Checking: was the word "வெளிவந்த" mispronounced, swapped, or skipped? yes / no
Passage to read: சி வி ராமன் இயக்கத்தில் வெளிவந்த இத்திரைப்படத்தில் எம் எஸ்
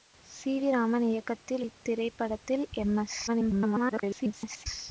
yes